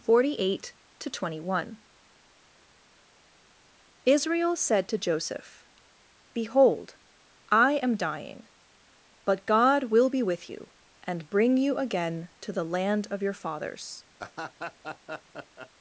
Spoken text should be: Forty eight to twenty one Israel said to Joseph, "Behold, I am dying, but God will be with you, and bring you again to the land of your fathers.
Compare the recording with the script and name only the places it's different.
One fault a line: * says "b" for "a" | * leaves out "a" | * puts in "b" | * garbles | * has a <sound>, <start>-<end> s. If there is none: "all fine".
* has a laugh, 14.2-15.7 s